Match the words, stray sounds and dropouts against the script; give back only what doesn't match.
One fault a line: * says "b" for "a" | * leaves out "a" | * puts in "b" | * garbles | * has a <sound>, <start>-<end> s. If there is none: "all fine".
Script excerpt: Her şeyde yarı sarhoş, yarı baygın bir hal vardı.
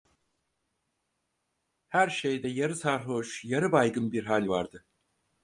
all fine